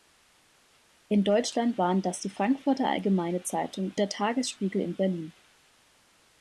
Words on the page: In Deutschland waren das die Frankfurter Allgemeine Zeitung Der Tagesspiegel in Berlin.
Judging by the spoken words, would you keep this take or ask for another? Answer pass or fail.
pass